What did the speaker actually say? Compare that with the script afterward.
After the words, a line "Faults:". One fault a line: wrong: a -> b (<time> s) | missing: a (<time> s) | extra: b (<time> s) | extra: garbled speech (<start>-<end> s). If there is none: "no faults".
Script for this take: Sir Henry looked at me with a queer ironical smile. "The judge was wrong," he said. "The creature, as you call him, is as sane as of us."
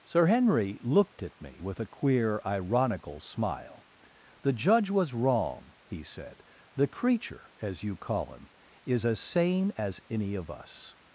Sir Henry looked at me with a queer ironical smile. "The judge was wrong," he said. "The creature, as you call him, is as sane as any of us."
Faults:
extra: any (10.1 s)